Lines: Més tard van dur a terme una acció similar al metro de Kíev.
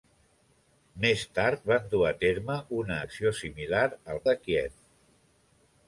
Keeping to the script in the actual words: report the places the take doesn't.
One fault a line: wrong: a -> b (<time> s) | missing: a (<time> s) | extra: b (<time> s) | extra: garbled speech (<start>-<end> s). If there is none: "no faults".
missing: metro (4.2 s)